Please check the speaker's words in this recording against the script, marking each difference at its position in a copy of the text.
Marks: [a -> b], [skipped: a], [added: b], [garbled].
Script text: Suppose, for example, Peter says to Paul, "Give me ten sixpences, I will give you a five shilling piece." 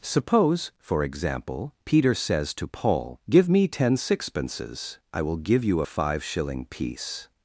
Suppose, for example, Peter says to Paul, "Give me ten sixpences, I will give you a five shilling piece."